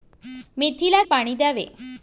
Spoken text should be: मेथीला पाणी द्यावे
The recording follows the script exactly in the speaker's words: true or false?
true